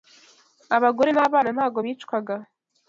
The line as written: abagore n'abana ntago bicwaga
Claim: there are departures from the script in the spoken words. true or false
false